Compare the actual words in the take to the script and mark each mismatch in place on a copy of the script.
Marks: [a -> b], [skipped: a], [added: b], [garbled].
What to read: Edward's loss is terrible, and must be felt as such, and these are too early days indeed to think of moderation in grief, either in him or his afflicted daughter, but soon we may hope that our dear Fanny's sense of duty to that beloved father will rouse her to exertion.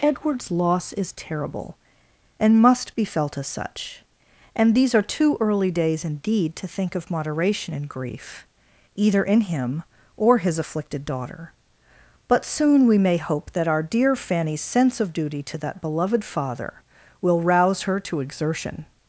Edward's loss is terrible, and must be felt as such, and these are too early days indeed to think of moderation in grief, either in him or his afflicted daughter, but soon we may hope that our dear Fanny's sense of duty to that beloved father will rouse her to exertion.